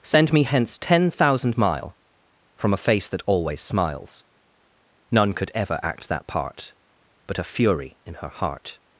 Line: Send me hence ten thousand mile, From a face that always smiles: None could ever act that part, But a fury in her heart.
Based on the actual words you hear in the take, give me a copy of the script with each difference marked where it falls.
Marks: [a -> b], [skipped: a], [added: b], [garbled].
Send me hence ten thousand mile, From a face that always smiles: None could ever act that part, But a fury in her heart.